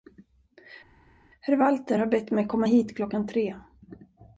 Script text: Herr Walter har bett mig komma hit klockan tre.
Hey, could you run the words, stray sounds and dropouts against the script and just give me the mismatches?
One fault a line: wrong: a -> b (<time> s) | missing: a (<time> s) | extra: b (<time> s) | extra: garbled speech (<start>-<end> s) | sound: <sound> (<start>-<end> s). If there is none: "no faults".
no faults